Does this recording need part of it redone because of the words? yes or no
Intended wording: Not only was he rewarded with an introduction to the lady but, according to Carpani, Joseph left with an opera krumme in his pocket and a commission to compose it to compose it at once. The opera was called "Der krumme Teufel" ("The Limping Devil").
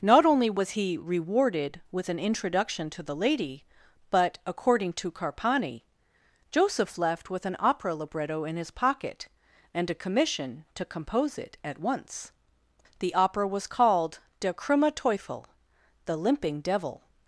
yes